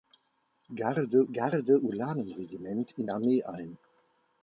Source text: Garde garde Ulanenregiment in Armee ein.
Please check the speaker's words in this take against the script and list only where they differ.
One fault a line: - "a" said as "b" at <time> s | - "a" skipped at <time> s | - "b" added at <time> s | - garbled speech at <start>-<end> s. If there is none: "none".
none